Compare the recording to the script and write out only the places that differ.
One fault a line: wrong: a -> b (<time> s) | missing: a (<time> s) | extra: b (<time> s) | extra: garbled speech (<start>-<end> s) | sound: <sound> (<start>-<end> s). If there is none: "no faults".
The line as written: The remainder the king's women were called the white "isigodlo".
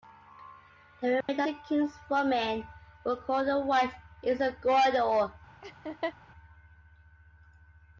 sound: dropout (1.2-1.3 s)
sound: laugh (5.6-6.1 s)